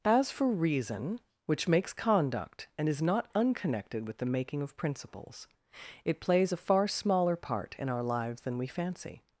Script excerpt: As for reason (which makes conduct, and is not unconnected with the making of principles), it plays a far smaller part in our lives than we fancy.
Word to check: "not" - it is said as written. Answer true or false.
true